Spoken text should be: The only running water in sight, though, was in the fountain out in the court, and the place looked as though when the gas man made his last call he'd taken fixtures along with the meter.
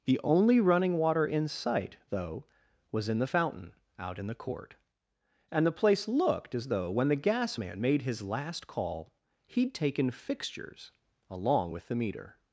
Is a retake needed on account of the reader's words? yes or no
no